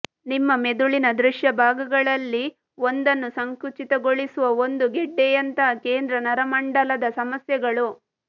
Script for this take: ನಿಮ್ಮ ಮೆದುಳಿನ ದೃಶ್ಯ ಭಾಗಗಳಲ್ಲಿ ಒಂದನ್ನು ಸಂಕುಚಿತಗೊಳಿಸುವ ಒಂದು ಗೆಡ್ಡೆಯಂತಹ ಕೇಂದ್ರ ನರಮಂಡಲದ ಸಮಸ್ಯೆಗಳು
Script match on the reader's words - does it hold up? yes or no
yes